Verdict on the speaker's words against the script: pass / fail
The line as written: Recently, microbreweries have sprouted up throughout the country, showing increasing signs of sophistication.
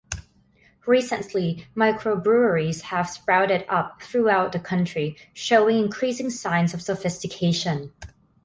pass